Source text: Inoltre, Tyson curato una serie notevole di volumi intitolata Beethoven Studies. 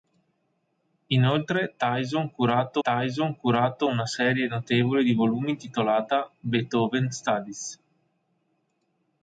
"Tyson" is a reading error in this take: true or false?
false